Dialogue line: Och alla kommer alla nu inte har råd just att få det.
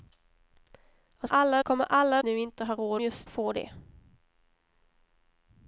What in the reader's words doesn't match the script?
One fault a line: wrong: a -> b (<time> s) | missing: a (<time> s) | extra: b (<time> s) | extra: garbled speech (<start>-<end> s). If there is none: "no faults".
no faults